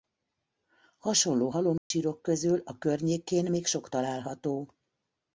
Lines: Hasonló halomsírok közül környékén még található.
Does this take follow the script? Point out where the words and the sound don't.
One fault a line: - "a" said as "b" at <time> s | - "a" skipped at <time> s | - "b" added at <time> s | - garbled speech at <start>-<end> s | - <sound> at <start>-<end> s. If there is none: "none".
- dropout at 1.8-1.9 s
- "a" added at 2.6 s
- "sok" added at 3.7 s